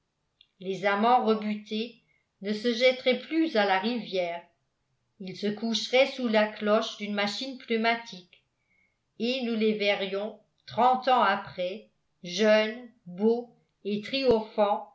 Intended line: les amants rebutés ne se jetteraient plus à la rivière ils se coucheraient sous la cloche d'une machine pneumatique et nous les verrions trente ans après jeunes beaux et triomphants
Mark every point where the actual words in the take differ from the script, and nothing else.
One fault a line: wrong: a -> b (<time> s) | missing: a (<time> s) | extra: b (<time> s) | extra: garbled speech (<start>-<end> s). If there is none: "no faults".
no faults